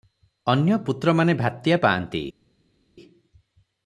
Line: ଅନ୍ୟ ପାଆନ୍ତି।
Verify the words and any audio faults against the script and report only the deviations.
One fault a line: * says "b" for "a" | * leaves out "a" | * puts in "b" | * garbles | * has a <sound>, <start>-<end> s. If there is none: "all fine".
* puts in "ପୁତ୍ରମାନେ ଭାତିଆ"